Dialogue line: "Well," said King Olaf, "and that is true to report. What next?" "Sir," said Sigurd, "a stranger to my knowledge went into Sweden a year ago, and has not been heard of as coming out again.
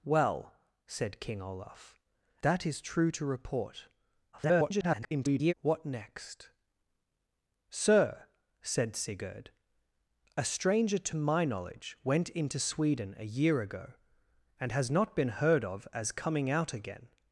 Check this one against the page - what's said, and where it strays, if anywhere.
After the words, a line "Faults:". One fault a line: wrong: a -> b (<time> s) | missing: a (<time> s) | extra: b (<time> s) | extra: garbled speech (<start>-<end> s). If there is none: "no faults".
"Well," said King Olaf, "that is true to report. [garbled] What next?" "Sir," said Sigurd, "a stranger to my knowledge went into Sweden a year ago, and has not been heard of as coming out again.
Faults:
missing: and (2.0 s)
extra: garbled speech (4.3-5.5 s)